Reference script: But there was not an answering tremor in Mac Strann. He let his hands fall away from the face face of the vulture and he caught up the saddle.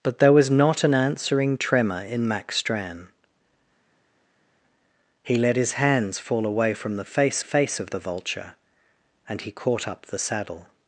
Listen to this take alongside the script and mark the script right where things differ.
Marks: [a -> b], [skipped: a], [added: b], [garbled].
But there was not an answering tremor in Mac Strann. He let his hands fall away from the face face of the vulture and he caught up the saddle.